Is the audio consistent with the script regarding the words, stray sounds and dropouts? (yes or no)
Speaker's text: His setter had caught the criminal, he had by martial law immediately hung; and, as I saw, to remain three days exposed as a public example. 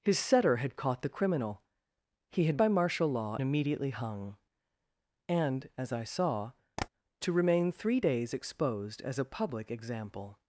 no